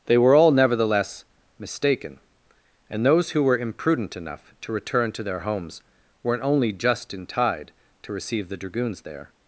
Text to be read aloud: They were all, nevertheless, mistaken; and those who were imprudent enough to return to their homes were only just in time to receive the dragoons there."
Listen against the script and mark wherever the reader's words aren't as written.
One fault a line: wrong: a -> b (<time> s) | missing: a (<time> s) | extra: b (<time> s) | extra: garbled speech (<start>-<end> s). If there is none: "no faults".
wrong: were -> weren't (6.2 s)
wrong: time -> tide (7.3 s)